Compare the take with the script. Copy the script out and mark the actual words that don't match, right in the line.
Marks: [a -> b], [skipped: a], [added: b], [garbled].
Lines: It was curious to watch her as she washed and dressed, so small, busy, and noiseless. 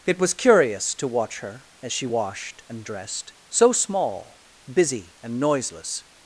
It was curious to watch her as she washed and dressed, so small, busy, and noiseless.